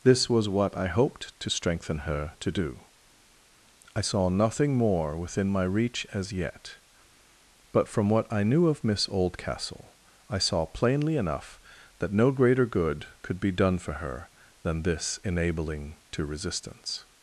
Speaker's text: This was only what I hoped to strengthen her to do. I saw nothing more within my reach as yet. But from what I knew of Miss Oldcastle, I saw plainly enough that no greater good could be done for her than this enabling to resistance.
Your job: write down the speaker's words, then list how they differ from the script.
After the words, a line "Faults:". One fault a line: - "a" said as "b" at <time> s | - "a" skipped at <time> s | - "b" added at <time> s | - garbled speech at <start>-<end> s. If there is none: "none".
This was what I hoped to strengthen her to do. I saw nothing more within my reach as yet. But from what I knew of Miss Oldcastle, I saw plainly enough that no greater good could be done for her than this enabling to resistance.
Faults:
- "only" skipped at 0.5 s